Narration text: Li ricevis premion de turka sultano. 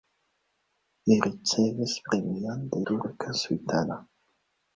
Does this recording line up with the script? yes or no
yes